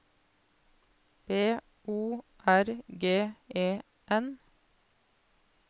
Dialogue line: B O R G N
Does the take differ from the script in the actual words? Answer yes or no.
yes